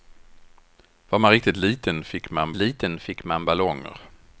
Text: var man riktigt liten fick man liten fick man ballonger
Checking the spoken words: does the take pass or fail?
pass